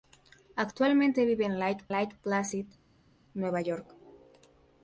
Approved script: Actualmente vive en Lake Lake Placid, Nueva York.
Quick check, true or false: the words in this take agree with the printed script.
true